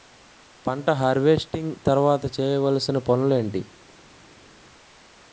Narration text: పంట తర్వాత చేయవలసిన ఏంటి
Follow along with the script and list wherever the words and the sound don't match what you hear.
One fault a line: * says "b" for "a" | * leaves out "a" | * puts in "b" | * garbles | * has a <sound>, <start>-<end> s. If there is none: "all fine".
* puts in "హార్వెస్టింగ్"
* puts in "పనులు"